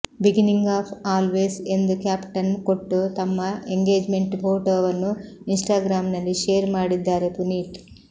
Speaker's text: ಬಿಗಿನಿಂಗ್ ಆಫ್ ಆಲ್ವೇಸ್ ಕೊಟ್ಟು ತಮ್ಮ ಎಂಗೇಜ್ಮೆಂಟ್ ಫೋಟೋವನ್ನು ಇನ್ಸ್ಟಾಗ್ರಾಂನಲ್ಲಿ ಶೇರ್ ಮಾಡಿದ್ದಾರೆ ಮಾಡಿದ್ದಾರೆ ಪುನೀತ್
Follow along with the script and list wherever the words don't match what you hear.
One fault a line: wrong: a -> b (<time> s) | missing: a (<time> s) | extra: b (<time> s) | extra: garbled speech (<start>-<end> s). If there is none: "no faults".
extra: ಎಂದು ಕ್ಯಾಪ್ಶನ್ (1.7 s)
missing: ಮಾಡಿದ್ದಾರೆ (7.3 s)